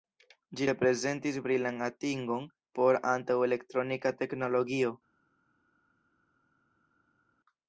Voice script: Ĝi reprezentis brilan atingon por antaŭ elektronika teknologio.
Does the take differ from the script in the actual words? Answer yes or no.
no